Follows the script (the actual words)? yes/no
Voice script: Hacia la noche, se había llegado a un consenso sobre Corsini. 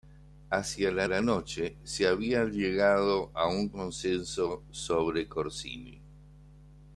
no